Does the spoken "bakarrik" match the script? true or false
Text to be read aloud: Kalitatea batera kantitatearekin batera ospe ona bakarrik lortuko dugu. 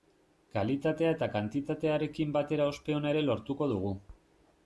false